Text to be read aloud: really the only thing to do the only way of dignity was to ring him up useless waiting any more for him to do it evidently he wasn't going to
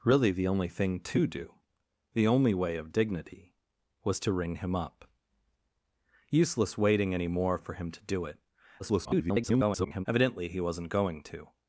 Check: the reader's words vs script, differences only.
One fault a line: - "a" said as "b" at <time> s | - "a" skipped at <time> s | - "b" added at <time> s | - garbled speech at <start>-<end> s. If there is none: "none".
- garbled speech at 8.8-10.1 s